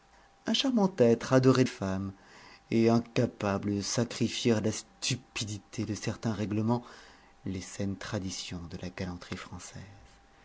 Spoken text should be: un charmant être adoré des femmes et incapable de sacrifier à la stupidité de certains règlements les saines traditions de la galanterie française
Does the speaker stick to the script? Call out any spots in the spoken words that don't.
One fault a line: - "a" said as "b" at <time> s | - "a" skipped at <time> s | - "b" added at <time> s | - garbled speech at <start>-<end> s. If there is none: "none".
- "des" skipped at 1.7 s